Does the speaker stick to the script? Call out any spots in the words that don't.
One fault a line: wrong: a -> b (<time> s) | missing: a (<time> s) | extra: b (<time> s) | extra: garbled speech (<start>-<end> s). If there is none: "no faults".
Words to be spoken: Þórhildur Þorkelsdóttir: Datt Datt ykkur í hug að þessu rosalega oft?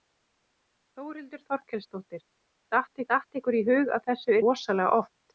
no faults